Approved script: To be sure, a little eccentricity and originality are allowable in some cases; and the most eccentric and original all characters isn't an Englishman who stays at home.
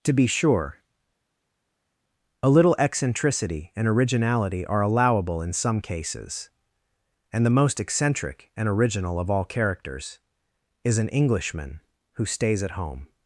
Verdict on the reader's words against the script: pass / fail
fail